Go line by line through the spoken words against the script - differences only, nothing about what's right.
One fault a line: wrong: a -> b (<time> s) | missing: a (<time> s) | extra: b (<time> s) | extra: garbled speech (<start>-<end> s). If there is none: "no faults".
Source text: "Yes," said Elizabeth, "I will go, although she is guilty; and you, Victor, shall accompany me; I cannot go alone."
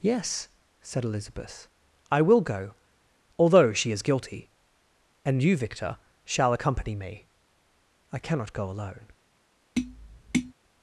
no faults